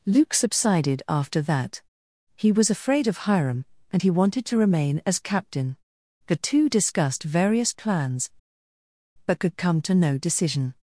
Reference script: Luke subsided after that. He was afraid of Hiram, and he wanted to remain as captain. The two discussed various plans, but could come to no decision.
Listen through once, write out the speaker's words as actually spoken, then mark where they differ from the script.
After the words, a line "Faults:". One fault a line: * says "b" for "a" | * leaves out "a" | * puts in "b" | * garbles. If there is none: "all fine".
Luke subsided after that. He was afraid of Hiram, and he wanted to remain as captain. The two discussed various plans, but could come to no decision.
Faults:
all fine